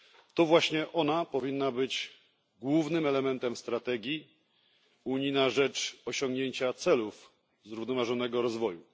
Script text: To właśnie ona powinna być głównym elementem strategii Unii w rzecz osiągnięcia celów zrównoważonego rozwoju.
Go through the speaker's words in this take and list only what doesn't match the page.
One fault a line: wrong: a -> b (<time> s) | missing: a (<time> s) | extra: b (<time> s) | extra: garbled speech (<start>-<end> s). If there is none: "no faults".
wrong: w -> na (5.3 s)